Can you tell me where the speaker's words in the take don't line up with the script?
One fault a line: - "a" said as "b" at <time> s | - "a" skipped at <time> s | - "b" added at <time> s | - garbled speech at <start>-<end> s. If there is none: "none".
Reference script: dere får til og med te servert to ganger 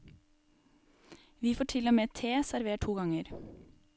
- "dere" said as "vi" at 1.4 s